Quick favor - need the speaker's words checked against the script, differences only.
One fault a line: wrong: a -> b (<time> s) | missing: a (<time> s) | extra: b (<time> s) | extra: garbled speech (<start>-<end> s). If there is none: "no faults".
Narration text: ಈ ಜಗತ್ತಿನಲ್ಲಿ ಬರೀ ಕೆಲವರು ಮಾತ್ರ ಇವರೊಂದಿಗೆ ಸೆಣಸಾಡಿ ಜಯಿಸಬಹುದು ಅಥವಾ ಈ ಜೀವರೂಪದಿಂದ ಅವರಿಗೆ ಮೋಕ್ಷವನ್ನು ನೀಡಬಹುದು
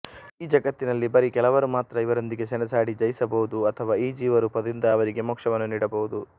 no faults